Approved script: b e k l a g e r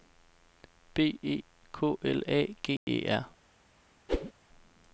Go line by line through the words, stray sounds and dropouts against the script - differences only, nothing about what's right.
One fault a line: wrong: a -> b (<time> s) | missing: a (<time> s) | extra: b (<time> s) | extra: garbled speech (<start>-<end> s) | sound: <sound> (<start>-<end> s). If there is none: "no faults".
sound: dropout (2.8-2.9 s)
sound: whoosh (4.1-4.3 s)